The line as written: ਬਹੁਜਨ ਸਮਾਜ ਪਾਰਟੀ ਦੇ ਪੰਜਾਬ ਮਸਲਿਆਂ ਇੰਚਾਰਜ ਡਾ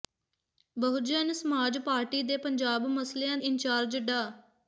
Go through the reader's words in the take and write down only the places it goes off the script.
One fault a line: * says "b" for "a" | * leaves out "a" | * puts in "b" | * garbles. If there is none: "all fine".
all fine